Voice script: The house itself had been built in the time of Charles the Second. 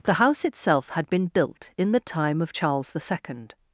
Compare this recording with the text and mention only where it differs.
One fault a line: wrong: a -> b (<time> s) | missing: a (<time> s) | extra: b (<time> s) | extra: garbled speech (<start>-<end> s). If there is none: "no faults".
no faults